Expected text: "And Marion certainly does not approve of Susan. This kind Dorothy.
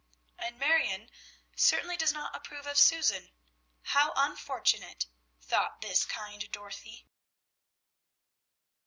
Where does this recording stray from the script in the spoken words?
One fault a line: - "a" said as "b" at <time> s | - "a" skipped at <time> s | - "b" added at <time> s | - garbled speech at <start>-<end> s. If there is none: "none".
- "How unfortunate thought" added at 3.8 s